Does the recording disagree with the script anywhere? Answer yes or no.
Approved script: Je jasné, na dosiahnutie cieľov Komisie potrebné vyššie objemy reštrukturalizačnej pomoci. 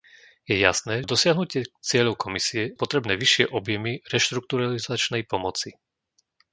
no